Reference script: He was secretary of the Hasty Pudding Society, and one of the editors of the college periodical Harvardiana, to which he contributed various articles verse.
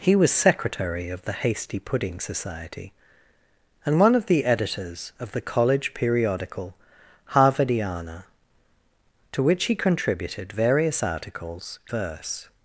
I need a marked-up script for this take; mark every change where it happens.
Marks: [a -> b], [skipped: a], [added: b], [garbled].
He was secretary of the Hasty Pudding Society, and one of the editors of the college periodical Harvardiana, to which he contributed various articles verse.